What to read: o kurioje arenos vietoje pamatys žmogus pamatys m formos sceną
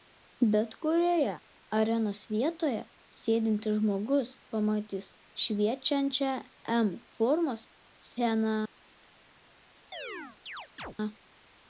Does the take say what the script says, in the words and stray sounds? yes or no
no